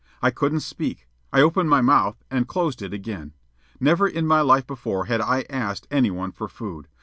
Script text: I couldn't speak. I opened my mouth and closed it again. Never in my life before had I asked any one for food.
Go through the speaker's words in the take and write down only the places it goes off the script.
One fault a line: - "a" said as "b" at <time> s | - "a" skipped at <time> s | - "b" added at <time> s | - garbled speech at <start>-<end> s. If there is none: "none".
none